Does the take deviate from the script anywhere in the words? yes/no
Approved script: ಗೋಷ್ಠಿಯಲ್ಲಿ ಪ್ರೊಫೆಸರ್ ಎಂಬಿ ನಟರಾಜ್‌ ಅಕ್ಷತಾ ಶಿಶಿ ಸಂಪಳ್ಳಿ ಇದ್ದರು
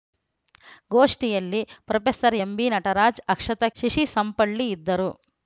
no